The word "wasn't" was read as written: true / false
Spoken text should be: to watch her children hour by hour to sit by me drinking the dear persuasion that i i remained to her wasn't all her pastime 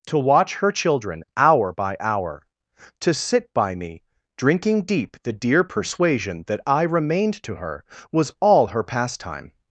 false